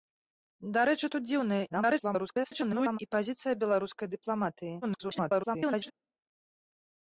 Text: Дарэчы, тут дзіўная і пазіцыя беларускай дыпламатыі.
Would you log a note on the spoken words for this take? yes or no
yes